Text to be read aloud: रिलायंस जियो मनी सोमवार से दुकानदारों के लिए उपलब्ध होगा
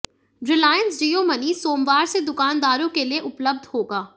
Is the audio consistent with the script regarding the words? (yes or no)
yes